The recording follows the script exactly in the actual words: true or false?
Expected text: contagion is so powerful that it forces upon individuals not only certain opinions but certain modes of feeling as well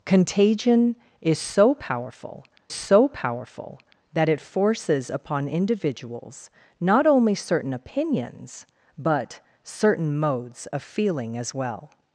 false